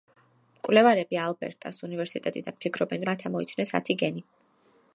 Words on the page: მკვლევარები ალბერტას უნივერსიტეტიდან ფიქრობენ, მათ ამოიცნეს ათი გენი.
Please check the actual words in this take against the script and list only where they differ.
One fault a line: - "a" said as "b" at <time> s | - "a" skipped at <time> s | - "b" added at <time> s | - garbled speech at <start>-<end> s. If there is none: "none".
none